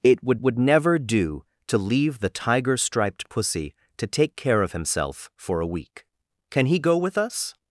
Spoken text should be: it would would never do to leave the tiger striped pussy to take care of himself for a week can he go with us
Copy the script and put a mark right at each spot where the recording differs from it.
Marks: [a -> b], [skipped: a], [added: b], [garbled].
it would would never do to leave the tiger striped pussy to take care of himself for a week can he go with us